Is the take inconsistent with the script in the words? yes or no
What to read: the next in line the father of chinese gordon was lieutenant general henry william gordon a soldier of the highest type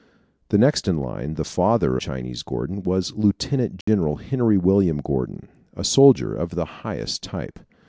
yes